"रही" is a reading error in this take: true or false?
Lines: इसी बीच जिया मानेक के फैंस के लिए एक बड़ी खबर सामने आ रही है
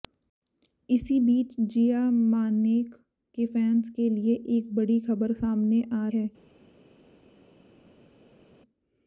true